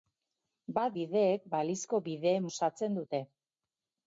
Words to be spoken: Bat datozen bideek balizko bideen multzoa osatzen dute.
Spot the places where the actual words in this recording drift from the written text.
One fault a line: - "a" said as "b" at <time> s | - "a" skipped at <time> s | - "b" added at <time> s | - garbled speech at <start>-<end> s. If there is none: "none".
- "datozen" skipped at 0.9 s
- "multzoa" skipped at 2.5 s